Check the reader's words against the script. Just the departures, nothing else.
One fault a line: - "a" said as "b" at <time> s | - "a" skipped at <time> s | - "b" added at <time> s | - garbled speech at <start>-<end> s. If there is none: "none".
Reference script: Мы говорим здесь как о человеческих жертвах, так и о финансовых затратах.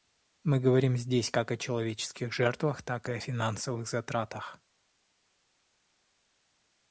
none